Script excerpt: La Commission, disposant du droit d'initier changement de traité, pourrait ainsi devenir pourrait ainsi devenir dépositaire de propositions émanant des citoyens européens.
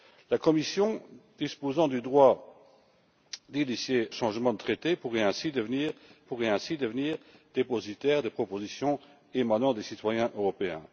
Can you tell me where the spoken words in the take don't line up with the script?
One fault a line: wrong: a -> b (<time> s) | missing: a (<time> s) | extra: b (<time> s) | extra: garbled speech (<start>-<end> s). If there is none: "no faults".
no faults